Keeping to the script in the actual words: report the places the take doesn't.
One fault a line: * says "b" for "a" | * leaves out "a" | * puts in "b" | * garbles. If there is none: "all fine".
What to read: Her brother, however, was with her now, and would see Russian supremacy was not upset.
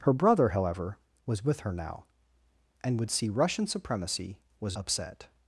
* leaves out "not"